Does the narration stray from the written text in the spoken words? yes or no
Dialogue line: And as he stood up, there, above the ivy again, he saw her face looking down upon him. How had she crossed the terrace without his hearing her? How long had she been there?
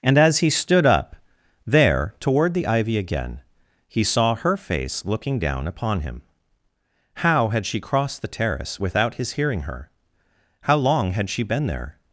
yes